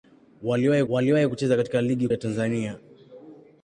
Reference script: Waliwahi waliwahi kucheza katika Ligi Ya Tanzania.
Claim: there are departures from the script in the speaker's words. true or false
false